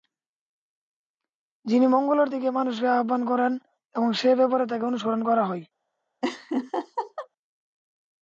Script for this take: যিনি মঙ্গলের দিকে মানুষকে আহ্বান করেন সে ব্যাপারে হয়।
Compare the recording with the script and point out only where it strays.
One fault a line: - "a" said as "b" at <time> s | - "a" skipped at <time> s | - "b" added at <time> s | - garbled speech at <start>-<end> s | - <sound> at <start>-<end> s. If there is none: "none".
- "এবং" added at 4.0 s
- "তাকে অনুসরণ করা" added at 4.7 s
- laugh at 6.2-7.3 s